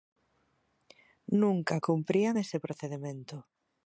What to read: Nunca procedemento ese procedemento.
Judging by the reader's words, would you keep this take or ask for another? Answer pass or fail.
fail